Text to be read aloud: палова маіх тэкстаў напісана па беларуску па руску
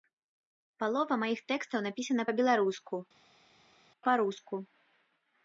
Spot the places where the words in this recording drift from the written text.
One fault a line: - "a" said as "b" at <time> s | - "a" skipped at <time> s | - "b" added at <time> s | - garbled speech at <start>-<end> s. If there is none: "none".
none